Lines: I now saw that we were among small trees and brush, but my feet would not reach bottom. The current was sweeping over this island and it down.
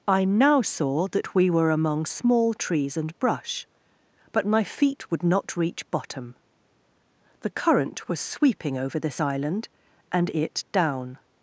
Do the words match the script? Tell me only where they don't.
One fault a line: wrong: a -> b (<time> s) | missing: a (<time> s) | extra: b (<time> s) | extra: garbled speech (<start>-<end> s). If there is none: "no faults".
no faults